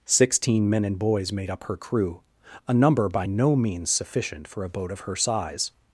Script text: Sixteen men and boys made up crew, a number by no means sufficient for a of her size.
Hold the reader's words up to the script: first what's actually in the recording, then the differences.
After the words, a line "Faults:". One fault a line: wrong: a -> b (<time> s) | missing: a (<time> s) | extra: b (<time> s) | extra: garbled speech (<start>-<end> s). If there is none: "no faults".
Sixteen men and boys made up her crew, a number by no means sufficient for a boat of her size.
Faults:
extra: her (1.6 s)
extra: boat (4.7 s)